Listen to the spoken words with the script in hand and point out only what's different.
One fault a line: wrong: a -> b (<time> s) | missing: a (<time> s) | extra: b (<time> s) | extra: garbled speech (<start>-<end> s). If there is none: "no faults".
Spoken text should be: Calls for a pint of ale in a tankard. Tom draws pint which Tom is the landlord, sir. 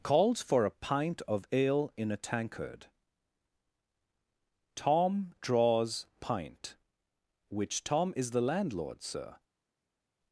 no faults